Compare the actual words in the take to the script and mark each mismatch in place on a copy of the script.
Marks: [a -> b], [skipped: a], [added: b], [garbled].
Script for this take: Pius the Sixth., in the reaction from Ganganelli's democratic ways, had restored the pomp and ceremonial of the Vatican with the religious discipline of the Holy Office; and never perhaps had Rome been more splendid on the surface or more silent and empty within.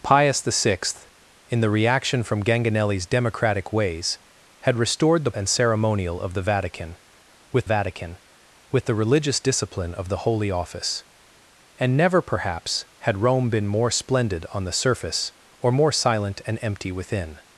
Pius the Sixth., in the reaction from Ganganelli's democratic ways, had restored the [skipped: pomp] and ceremonial of the Vatican with [added: Vatican with] the religious discipline of the Holy Office; and never perhaps had Rome been more splendid on the surface or more silent and empty within.